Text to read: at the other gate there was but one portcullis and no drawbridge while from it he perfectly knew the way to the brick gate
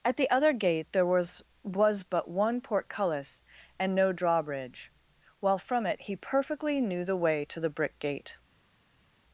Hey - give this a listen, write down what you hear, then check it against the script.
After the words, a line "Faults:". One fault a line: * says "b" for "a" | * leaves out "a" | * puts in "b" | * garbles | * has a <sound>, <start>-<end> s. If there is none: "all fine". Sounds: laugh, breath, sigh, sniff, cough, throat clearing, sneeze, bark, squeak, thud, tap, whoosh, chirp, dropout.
at the other gate there was was but one portcullis and no drawbridge while from it he perfectly knew the way to the brick gate
Faults:
* puts in "was"